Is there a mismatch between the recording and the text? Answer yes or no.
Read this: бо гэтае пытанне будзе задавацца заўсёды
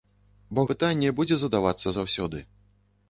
yes